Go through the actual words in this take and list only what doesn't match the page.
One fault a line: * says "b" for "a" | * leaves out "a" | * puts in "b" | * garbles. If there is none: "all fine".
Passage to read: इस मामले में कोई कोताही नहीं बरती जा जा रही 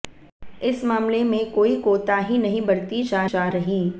all fine